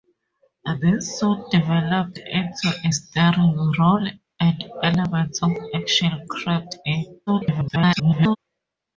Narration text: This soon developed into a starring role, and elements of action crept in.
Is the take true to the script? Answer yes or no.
no